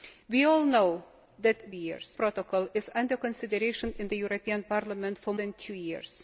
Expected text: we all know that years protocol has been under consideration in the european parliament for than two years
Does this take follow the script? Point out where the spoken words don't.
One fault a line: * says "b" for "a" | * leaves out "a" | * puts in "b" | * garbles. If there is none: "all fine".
all fine